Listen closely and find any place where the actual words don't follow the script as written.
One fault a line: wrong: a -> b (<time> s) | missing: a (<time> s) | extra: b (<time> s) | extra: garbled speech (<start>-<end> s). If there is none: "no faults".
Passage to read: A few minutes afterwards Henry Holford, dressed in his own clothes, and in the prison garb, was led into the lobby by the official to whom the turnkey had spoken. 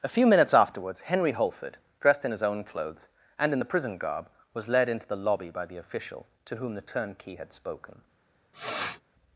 no faults